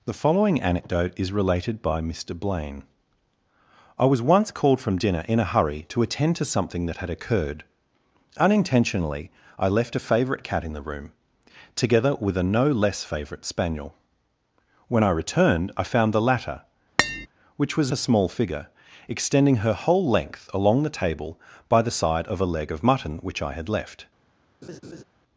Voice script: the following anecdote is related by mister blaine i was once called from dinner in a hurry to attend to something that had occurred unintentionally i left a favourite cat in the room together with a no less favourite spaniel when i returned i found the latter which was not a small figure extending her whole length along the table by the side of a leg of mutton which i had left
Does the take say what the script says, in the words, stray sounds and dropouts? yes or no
no